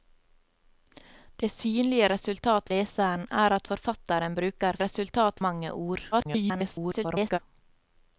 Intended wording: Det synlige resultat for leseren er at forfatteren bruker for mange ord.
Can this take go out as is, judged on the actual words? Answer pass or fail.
fail